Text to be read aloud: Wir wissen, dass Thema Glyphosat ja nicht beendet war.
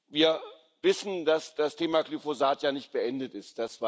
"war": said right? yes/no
no